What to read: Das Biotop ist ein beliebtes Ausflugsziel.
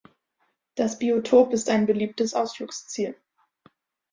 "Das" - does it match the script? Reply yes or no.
yes